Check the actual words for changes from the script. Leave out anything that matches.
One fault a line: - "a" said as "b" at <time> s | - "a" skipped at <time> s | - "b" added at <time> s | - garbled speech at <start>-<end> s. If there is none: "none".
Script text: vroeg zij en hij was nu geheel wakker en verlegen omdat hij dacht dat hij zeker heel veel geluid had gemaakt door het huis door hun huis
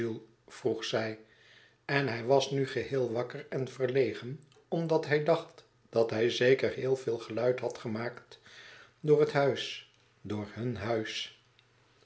none